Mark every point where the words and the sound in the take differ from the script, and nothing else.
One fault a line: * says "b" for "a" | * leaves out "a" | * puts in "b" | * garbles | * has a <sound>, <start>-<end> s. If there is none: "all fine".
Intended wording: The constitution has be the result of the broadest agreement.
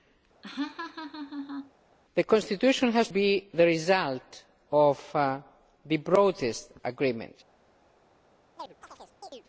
* has a laugh, 0.4-1.7 s
* has a chirp, 8.6-9.4 s